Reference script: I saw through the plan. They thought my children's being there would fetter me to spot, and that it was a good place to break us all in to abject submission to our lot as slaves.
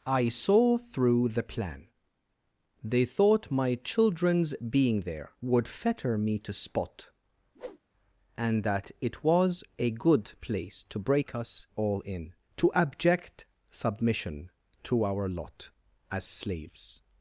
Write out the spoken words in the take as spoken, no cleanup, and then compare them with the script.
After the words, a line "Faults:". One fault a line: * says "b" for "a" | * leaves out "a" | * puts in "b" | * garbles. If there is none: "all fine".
I saw through the plan. They thought my children's being there would fetter me to spot, and that it was a good place to break us all in to abject submission to our lot as slaves.
Faults:
all fine